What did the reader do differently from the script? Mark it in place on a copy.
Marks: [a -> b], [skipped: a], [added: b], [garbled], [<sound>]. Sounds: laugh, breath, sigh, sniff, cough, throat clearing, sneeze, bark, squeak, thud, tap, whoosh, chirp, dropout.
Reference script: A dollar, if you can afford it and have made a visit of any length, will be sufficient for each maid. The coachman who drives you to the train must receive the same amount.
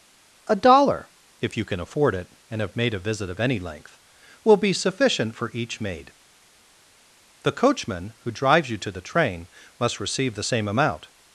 A dollar, if you can afford it and have made a visit of any length, will be sufficient for each maid. The coachman who drives you to the train must receive the same amount.